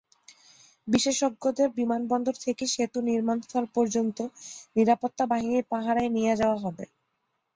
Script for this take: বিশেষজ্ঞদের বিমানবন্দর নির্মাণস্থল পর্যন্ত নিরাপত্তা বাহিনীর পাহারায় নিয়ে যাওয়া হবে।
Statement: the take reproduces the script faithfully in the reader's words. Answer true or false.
false